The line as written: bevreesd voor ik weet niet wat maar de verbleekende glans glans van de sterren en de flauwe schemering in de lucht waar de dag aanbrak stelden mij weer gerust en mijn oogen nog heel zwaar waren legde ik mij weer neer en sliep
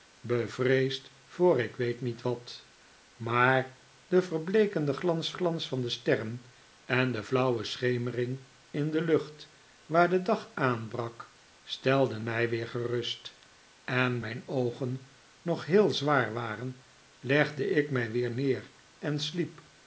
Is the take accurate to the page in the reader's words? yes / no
yes